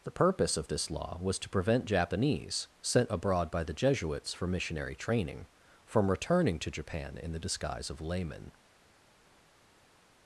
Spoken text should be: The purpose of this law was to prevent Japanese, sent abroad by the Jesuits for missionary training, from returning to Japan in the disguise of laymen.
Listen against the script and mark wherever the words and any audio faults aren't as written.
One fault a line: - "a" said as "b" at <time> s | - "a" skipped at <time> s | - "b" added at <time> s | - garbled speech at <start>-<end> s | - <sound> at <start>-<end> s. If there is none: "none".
none